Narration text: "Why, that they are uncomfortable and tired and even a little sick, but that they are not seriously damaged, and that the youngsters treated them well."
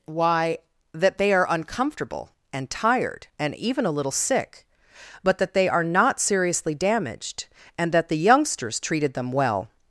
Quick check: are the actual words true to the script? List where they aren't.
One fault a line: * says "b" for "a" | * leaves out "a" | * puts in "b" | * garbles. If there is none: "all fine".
all fine